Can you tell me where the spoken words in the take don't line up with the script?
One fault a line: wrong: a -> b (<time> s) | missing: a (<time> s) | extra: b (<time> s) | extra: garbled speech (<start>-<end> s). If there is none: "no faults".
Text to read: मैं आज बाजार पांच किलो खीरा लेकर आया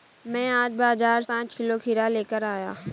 no faults